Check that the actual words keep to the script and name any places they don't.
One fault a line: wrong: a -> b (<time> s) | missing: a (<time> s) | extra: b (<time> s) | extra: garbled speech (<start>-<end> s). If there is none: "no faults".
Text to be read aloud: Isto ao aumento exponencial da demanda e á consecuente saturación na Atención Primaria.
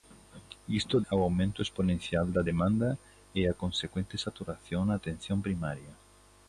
no faults